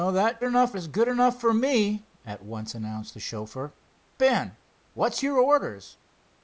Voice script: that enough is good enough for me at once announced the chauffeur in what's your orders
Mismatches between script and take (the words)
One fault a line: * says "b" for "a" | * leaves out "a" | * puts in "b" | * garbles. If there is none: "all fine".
all fine